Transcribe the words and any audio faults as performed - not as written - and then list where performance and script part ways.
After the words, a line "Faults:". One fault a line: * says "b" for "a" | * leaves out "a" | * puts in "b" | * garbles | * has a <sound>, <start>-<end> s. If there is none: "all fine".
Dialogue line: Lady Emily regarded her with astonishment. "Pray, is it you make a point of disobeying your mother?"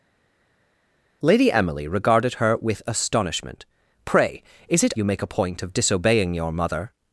Lady Emily regarded her with astonishment. "Pray, is it you make a point of disobeying your mother?"
Faults:
all fine